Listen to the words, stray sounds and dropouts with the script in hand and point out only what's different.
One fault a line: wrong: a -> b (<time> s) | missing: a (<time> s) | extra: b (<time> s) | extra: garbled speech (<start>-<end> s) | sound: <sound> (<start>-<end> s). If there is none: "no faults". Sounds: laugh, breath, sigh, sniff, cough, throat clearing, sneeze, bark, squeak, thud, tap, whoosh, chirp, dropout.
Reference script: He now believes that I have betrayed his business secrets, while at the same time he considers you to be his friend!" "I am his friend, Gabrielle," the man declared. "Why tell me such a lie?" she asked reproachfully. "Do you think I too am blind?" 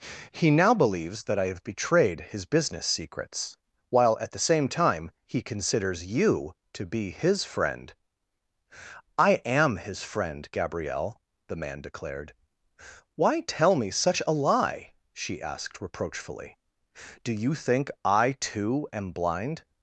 no faults